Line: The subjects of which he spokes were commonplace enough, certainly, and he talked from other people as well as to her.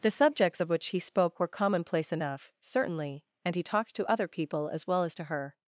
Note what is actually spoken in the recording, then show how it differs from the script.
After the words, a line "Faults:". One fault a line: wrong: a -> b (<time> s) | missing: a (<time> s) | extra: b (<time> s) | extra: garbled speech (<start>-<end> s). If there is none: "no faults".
The subjects of which he spoke were commonplace enough, certainly, and he talked to other people as well as to her.
Faults:
wrong: spokes -> spoke (1.0 s)
wrong: from -> to (4.0 s)